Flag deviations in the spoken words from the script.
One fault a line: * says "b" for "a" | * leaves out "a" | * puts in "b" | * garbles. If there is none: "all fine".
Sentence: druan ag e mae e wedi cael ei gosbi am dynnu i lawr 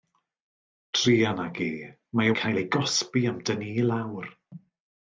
* leaves out "wedi"